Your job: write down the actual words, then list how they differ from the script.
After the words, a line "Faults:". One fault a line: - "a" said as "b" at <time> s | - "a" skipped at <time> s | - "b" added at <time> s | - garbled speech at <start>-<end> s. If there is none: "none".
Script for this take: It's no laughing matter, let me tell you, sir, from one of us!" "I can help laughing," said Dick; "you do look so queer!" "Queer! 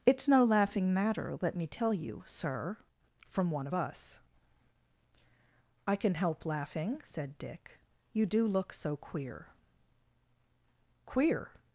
It's no laughing matter, let me tell you, sir, from one of us!" "I can help laughing," said Dick; "you do look so queer!" "Queer!
Faults:
none